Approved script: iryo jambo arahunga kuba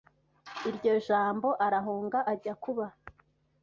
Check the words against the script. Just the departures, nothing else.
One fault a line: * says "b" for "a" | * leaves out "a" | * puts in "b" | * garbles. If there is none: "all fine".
* puts in "ajya"